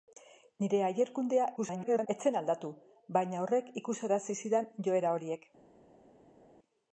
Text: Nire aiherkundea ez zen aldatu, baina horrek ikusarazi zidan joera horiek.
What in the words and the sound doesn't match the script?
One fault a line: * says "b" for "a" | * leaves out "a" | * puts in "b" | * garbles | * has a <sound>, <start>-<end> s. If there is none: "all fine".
* garbles